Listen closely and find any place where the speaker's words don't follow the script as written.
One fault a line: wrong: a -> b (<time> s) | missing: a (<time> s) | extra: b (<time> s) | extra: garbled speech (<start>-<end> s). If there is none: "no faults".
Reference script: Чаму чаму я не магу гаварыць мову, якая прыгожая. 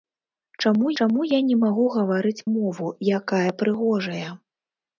no faults